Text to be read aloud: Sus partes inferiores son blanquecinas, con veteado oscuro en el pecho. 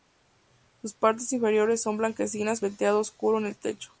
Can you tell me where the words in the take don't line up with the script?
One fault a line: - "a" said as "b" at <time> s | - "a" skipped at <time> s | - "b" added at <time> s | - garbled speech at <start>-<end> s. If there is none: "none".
- "con" skipped at 2.6 s